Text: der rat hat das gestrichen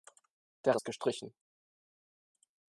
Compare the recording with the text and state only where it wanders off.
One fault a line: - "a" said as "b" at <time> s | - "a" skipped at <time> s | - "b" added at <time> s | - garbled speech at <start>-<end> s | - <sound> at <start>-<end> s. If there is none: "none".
- "rat hat" skipped at 0.8 s